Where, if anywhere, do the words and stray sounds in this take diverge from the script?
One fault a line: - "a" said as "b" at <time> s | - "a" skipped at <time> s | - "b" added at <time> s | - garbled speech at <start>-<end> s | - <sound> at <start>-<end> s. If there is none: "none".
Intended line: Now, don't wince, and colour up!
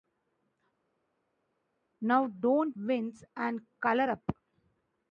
none